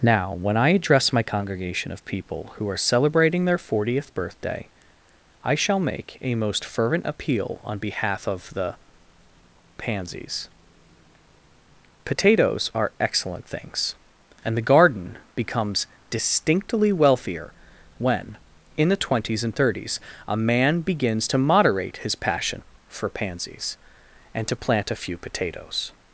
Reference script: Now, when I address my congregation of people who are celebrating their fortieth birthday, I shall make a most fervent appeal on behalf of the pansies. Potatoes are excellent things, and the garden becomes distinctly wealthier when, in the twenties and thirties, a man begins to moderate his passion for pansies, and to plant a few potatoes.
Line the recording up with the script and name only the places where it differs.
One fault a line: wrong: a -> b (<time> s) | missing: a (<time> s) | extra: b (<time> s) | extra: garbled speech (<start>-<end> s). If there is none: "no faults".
no faults